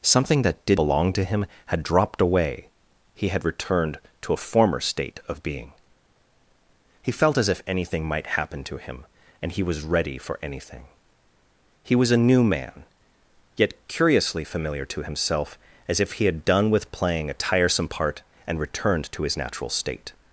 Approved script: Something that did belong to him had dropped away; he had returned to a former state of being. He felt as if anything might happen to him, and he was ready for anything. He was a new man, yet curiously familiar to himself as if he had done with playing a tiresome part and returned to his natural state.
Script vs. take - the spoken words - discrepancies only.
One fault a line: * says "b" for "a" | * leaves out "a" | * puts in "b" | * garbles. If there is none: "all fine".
all fine